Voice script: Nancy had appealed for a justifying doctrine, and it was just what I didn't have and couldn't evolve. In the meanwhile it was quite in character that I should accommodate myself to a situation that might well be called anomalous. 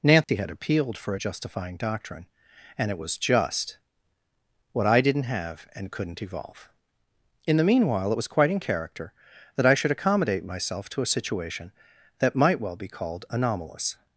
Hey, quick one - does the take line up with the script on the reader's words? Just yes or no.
yes